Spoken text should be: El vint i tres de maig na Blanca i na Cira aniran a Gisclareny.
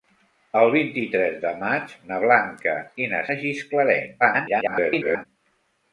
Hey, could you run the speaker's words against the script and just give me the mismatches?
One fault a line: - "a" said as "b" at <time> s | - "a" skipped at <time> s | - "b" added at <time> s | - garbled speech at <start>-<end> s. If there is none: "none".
- "Cira aniran" skipped at 3.2 s
- garbled speech at 4.2-5.3 s